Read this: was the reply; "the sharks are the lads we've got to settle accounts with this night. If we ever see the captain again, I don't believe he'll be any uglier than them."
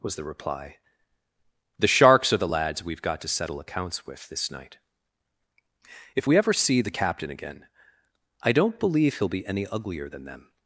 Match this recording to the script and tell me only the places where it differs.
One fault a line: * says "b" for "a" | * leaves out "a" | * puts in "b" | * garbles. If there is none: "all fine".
all fine